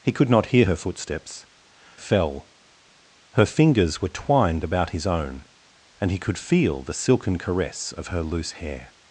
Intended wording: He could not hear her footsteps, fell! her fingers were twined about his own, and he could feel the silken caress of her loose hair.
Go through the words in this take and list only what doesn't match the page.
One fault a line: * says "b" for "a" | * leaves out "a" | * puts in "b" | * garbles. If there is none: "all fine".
all fine